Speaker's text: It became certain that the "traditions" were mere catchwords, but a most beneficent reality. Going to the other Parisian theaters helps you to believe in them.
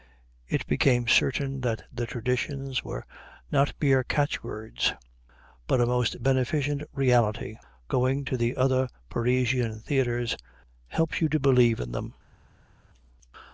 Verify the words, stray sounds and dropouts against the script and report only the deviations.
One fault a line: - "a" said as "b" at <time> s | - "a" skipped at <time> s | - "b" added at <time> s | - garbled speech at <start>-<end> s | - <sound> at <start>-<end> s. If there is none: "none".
- "not" added at 3.5 s